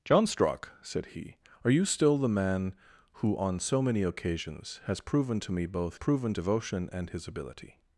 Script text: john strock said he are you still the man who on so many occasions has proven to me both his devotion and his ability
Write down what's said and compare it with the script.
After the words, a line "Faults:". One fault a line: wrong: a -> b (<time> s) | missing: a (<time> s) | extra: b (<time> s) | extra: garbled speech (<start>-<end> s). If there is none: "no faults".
john strock said he are you still the man who on so many occasions has proven to me both proven devotion and his ability
Faults:
wrong: his -> proven (5.9 s)